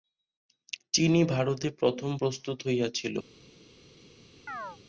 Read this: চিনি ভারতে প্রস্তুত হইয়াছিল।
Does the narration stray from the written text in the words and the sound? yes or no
yes